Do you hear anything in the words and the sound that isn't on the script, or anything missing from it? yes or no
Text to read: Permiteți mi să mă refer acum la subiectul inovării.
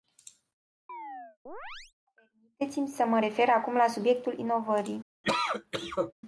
yes